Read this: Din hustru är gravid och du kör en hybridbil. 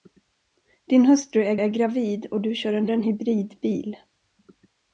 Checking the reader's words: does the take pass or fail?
fail